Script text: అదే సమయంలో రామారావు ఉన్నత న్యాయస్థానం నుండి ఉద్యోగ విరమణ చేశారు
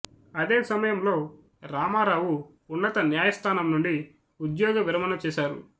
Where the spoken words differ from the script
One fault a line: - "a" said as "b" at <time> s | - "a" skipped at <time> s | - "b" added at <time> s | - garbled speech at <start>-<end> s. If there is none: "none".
none